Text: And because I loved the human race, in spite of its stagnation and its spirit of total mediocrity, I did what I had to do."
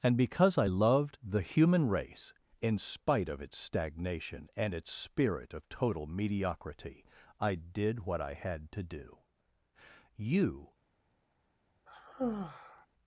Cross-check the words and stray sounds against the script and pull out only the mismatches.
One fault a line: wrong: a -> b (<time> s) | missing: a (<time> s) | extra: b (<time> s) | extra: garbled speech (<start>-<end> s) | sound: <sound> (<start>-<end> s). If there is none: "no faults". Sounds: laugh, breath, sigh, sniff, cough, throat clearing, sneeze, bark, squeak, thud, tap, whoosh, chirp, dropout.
extra: You (10.1 s)
sound: sigh (11.9-12.9 s)